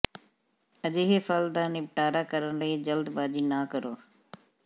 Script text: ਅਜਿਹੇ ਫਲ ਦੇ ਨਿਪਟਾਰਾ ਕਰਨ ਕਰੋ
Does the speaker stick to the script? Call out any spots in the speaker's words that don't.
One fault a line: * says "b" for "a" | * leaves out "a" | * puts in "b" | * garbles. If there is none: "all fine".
* says "ਦਾ" for "ਦੇ"
* puts in "ਲਈ ਜਲਦਬਾਜ਼ੀ ਨਾ"